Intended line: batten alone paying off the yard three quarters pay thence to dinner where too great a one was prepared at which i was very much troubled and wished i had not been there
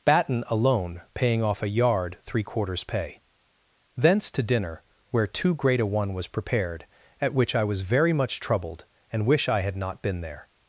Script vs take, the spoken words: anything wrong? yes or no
yes